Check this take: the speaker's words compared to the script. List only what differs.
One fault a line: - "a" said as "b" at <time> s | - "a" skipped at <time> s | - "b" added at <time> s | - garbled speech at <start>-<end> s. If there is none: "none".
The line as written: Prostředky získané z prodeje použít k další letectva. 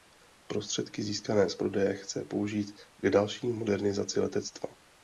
- "chce" added at 1.9 s
- "modernizaci" added at 3.5 s